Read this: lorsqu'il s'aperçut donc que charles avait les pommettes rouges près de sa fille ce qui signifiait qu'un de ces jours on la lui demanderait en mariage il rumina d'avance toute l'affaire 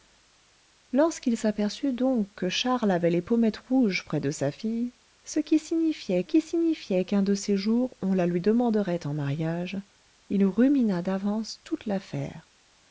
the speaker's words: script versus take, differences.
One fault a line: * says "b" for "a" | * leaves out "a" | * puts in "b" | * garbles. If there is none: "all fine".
* puts in "qui signifiait"